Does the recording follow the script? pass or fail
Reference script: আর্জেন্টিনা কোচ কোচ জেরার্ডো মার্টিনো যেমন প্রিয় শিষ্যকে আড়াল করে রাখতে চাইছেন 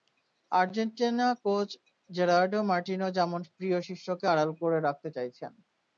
fail